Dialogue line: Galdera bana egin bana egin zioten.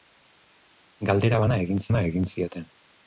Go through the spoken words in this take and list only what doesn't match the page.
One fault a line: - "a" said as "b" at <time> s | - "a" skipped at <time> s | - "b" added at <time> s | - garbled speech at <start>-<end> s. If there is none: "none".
none